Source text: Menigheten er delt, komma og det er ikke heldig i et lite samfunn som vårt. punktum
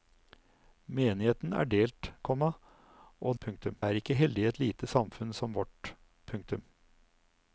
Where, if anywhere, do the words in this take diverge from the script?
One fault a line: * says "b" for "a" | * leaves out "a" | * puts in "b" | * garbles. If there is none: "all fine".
* says "punktum" for "det"